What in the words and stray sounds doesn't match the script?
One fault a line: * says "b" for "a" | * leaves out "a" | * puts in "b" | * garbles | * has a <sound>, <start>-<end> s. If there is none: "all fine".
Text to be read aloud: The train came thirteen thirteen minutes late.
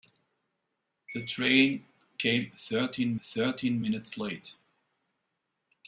all fine